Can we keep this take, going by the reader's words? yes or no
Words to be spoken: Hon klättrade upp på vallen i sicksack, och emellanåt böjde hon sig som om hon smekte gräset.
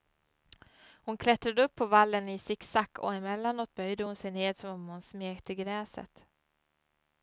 no